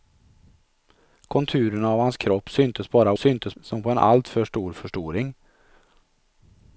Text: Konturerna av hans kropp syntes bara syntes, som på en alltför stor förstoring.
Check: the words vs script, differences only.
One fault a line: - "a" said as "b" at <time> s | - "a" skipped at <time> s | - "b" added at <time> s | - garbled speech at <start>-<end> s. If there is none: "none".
none